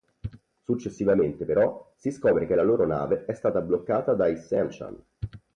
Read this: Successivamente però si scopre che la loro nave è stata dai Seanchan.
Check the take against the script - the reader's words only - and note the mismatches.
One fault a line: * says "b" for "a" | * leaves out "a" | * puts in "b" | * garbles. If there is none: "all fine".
* puts in "bloccata"